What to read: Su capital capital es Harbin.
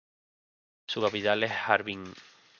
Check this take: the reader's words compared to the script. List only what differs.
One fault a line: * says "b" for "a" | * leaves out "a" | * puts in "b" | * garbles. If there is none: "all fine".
* leaves out "capital"